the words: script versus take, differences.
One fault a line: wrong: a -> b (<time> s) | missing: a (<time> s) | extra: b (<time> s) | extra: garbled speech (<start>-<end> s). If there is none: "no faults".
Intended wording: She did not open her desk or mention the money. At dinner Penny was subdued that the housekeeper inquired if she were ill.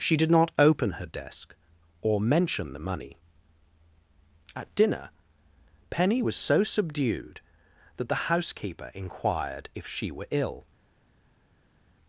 extra: so (6.4 s)